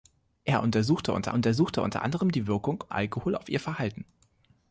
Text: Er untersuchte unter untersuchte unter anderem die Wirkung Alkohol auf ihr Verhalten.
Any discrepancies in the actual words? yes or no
no